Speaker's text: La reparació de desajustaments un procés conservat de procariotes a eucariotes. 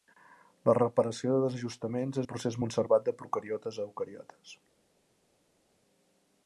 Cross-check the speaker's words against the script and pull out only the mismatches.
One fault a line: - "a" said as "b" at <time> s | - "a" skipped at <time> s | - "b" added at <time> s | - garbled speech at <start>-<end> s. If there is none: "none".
none